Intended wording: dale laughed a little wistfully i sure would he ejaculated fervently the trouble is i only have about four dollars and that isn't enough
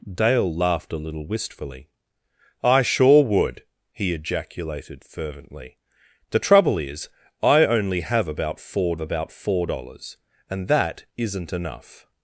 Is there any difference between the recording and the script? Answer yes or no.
yes